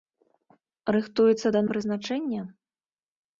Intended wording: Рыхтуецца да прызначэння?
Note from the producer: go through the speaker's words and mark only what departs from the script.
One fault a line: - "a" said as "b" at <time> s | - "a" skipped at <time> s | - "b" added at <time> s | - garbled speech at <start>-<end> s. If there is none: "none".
none